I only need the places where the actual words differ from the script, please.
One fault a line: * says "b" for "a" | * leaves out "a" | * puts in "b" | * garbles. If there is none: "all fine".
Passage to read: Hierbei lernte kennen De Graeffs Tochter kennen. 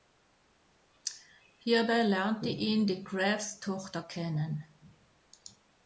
* says "ihn" for "kennen"